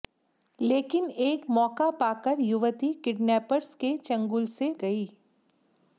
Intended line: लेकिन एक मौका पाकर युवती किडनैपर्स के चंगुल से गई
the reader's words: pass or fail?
pass